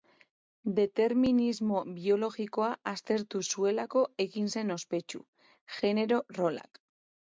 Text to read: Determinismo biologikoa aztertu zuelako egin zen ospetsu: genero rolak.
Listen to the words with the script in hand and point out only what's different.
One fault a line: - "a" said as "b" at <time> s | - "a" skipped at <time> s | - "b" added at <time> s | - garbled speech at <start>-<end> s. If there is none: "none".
none